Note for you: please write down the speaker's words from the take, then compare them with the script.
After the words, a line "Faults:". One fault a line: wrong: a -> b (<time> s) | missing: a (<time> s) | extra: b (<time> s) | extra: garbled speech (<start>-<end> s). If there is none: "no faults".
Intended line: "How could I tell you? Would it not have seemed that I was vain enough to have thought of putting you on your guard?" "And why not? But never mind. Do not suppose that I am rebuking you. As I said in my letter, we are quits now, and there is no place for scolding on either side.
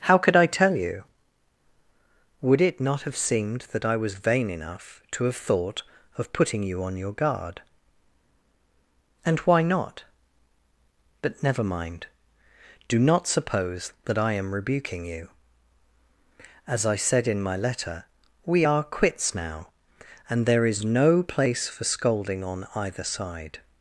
"How could I tell you? Would it not have seemed that I was vain enough to have thought of putting you on your guard?" "And why not? But never mind. Do not suppose that I am rebuking you. As I said in my letter, we are quits now, and there is no place for scolding on either side.
Faults:
no faults